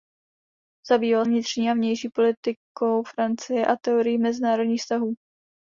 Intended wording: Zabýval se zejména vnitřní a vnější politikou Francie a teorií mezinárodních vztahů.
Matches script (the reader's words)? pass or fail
fail